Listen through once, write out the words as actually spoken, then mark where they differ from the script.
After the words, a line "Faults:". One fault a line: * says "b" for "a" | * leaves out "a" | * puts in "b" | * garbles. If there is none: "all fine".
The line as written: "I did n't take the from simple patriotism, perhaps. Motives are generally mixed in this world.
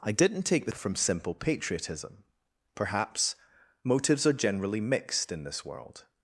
"I did n't take the from simple patriotism, perhaps. Motives are generally mixed in this world.
Faults:
all fine